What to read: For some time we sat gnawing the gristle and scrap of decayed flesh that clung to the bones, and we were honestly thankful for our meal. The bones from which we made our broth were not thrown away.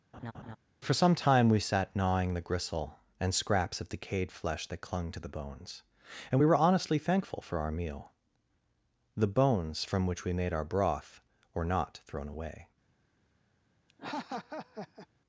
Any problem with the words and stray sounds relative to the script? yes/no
yes